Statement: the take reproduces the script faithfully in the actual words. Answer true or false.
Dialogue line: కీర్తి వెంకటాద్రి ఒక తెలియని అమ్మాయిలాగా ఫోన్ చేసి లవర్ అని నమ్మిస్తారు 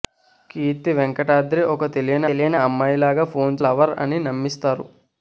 false